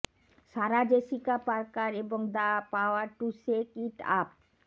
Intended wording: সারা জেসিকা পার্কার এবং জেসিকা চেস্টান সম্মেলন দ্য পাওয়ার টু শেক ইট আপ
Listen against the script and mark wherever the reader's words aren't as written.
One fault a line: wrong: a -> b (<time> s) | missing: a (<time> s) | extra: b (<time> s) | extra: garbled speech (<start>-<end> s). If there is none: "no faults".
missing: জেসিকা চেস্টান সম্মেলন (2.2 s)